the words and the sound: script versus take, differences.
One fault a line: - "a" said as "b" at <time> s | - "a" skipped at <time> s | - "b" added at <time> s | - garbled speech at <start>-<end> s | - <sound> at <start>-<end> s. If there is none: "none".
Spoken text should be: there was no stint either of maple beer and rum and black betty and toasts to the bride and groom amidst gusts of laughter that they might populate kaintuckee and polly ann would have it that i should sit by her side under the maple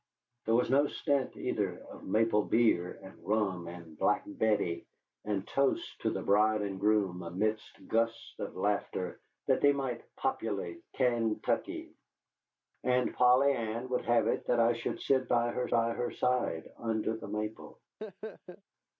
- "by her" added at 15.7 s
- laugh at 18.0-18.6 s